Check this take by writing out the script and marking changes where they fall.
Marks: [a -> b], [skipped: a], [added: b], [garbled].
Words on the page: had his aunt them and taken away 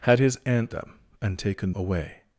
had his aunt them and taken away